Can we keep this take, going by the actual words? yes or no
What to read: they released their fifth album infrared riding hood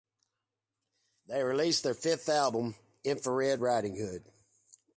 yes